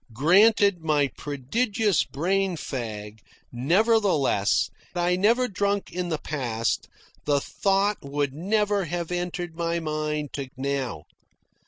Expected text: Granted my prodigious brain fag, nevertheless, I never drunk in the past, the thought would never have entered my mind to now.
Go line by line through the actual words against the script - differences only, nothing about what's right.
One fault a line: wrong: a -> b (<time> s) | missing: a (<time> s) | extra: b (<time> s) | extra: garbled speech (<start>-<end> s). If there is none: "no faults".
no faults